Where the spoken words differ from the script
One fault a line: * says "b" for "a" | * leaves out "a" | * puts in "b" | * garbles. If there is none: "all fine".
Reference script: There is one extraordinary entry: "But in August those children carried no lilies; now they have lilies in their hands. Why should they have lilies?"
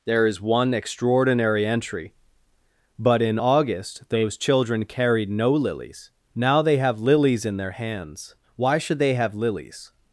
all fine